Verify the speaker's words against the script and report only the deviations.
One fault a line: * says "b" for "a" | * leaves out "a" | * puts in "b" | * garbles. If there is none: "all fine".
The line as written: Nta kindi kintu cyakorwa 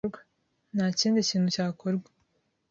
all fine